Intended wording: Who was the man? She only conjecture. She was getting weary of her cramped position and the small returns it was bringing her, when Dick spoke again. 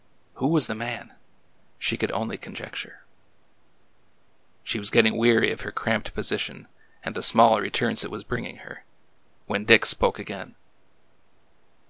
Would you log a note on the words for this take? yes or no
yes